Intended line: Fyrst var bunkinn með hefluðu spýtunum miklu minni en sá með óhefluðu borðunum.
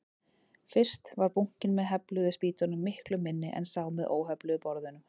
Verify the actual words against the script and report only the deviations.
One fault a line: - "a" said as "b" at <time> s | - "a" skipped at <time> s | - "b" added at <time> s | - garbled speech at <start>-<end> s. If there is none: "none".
none